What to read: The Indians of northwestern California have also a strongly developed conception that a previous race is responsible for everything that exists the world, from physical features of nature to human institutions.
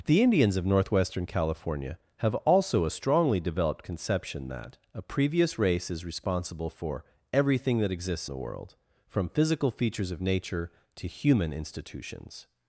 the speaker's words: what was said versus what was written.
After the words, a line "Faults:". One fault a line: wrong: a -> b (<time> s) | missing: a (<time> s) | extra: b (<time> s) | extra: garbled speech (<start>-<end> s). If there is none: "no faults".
The Indians of northwestern California have also a strongly developed conception that a previous race is responsible for everything that exists the world, from physical features of nature to human institutions.
Faults:
no faults